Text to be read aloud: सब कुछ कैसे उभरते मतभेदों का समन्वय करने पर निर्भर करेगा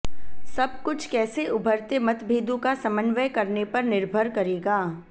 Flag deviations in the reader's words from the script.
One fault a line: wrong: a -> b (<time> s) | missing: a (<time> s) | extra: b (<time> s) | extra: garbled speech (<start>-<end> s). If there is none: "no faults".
no faults